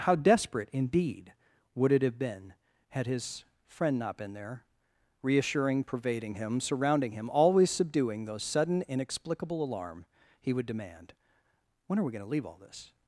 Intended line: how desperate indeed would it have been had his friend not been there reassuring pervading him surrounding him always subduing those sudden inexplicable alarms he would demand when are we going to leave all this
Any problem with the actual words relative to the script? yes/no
yes